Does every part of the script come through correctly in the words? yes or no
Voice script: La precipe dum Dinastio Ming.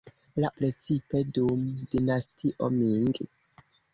yes